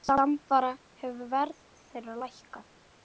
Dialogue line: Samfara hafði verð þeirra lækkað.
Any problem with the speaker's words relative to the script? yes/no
yes